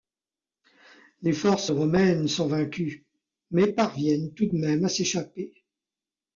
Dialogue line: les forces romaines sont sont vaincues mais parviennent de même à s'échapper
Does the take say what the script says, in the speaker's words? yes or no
no